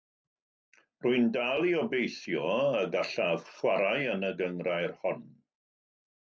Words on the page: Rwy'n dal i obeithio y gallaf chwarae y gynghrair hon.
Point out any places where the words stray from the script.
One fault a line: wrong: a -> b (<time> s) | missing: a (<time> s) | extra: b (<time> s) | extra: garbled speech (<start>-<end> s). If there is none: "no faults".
extra: yn (4.2 s)